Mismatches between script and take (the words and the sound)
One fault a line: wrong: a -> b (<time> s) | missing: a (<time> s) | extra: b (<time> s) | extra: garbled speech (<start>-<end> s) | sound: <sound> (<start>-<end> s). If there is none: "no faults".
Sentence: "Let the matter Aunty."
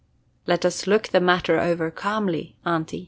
extra: us look (0.7 s)
extra: over calmly (1.6 s)